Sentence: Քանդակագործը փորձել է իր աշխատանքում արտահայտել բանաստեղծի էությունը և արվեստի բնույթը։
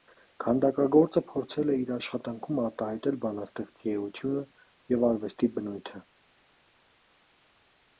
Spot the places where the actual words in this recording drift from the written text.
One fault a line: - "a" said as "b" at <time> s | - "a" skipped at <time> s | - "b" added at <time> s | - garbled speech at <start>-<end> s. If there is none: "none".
none